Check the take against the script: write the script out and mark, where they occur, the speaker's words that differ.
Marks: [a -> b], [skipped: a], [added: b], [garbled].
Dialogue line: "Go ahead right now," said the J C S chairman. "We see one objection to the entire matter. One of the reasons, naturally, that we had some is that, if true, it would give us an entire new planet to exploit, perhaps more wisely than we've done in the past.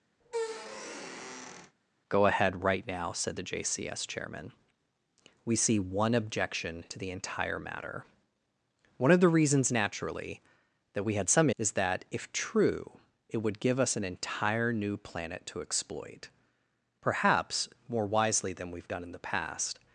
"Go ahead right now," said the J C S chairman. "We see one objection to the entire matter. One of the reasons, naturally, that we had some is that, if true, it would give us an entire new planet to exploit, perhaps more wisely than we've done in the past.